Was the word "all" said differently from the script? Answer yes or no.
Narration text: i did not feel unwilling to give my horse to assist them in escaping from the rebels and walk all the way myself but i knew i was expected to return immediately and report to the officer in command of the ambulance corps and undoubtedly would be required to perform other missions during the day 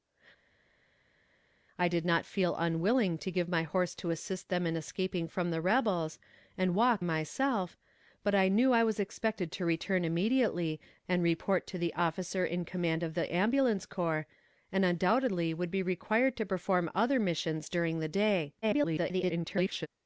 yes